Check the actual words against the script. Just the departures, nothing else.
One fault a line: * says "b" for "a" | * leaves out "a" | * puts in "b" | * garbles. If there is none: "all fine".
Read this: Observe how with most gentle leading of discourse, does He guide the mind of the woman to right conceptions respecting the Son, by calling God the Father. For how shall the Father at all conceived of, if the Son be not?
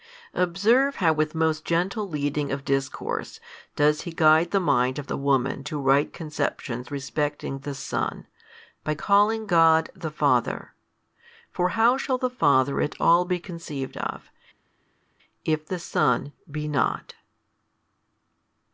* puts in "be"